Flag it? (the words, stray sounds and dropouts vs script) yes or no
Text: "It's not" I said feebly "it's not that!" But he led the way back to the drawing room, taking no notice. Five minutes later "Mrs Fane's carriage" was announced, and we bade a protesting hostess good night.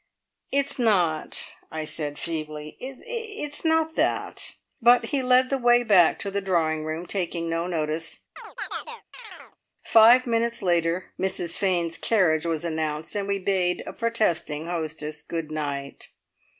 yes